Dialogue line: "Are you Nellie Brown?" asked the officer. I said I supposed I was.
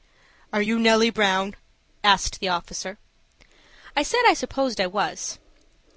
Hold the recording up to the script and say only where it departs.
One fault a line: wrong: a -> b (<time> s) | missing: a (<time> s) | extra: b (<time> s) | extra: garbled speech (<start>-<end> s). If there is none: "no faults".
no faults